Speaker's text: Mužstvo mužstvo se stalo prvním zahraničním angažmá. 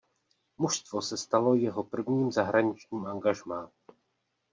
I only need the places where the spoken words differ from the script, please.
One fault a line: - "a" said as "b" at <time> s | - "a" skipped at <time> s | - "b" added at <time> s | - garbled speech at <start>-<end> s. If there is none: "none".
- "mužstvo" skipped at 1.0 s
- "jeho" added at 1.6 s